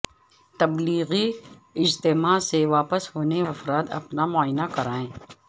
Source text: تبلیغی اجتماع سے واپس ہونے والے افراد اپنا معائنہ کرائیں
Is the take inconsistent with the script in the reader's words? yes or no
yes